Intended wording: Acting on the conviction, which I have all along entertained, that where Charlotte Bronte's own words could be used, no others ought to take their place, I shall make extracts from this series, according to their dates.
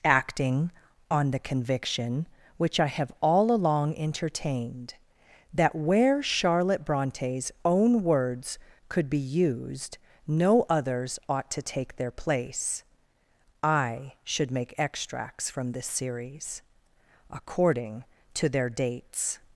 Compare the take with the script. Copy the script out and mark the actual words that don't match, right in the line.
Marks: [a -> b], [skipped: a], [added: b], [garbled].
Acting on the conviction, which I have all along entertained, that where Charlotte Bronte's own words could be used, no others ought to take their place, I [shall -> should] make extracts from this series, according to their dates.